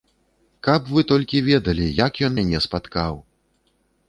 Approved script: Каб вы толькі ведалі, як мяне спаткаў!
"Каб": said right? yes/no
yes